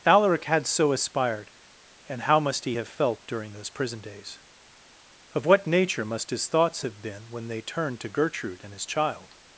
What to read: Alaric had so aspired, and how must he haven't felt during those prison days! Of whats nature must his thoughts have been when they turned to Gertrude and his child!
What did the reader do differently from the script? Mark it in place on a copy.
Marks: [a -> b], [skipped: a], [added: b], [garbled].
Alaric had so aspired, and how must he [haven't -> have] felt during those prison days! Of [whats -> what] nature must his thoughts have been when they turned to Gertrude and his child!